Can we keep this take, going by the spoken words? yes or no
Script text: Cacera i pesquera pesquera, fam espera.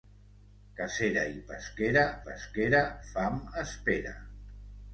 yes